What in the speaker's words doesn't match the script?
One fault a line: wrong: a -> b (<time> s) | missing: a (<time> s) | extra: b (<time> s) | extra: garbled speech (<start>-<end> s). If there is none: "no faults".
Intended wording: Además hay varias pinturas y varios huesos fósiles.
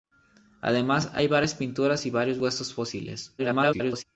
extra: garbled speech (3.4-4.0 s)